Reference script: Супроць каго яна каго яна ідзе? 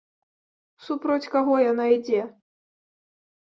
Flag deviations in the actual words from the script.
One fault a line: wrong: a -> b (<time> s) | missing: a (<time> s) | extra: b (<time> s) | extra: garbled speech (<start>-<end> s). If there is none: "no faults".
missing: каго яна (1.9 s)